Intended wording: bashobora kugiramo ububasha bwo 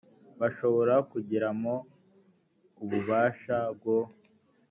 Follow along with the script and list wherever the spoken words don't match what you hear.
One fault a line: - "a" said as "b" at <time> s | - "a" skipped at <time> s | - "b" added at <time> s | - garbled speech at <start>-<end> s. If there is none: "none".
none